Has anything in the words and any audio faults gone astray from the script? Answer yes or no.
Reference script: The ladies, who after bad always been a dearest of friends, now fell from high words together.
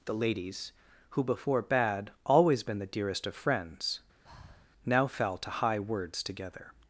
yes